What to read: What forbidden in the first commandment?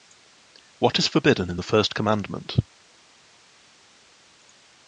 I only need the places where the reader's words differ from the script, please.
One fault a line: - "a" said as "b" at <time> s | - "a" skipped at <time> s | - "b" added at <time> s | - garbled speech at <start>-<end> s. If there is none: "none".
- "is" added at 1.0 s